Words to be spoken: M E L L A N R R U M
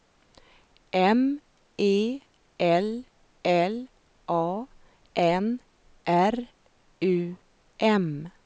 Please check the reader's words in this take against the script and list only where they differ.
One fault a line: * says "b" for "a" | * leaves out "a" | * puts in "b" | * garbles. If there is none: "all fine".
* leaves out "R"